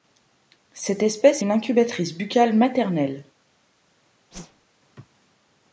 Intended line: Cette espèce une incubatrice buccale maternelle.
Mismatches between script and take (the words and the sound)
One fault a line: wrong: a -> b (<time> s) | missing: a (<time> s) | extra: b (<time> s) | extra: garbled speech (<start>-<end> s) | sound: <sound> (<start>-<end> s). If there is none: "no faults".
sound: whoosh (4.3-4.6 s)